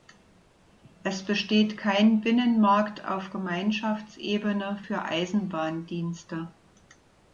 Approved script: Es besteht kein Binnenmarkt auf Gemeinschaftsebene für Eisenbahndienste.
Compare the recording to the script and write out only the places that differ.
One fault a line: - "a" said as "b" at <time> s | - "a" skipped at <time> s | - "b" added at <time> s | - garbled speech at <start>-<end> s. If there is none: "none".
none